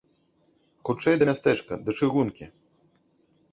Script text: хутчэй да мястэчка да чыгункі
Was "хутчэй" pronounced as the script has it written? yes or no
yes